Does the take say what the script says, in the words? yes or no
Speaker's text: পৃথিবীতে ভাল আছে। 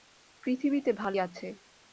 yes